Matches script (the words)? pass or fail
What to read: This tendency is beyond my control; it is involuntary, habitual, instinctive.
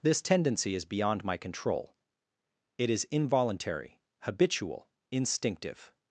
pass